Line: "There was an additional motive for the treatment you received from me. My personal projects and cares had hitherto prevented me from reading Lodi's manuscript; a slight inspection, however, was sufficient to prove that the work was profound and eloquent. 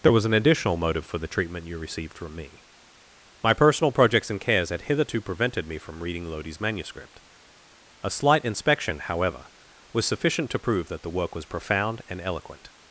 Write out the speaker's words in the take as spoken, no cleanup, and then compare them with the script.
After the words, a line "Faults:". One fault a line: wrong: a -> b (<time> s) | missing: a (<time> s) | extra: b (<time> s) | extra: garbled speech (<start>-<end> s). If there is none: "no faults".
"There was an additional motive for the treatment you received from me. My personal projects and cares had hitherto prevented me from reading Lodi's manuscript; a slight inspection, however, was sufficient to prove that the work was profound and eloquent.
Faults:
no faults